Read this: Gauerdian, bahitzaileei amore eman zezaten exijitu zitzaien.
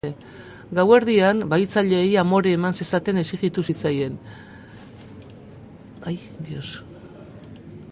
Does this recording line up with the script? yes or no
yes